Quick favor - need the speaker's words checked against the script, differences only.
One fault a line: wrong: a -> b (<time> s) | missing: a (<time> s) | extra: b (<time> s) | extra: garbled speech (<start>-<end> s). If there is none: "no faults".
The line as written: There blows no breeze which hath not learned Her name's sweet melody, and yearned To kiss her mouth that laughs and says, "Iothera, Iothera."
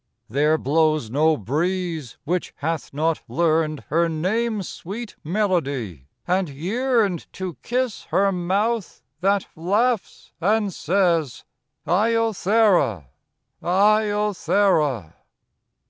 no faults